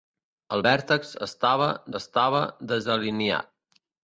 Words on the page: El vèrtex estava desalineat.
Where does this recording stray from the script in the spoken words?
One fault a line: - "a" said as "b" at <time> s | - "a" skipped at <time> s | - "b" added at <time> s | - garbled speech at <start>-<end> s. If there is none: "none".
- "estava" added at 2.0 s